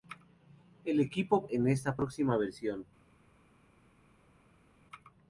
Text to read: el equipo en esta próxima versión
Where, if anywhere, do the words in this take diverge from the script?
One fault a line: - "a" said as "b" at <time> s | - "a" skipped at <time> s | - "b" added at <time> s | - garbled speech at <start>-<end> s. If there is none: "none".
none